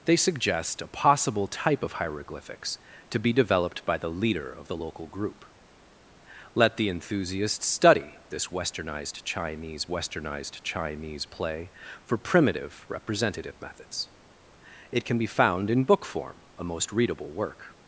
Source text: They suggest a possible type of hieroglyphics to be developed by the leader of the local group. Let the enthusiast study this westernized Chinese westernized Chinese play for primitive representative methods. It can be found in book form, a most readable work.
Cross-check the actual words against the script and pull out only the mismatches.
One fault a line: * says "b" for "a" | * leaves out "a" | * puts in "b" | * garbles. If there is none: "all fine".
all fine